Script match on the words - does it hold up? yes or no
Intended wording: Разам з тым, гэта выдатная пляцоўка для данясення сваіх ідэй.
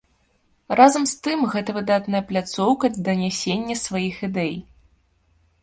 no